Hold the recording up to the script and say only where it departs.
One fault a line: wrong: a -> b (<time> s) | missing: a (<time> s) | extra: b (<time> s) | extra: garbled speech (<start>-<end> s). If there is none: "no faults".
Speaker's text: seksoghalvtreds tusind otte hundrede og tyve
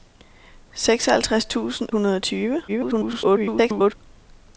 missing: otte (1.9 s)
extra: garbled speech (2.7-3.9 s)